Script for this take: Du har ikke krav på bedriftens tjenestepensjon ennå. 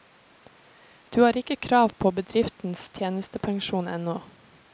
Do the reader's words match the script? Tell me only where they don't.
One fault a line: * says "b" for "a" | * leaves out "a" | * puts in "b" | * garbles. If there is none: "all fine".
all fine